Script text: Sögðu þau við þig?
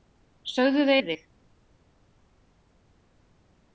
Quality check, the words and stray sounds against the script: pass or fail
pass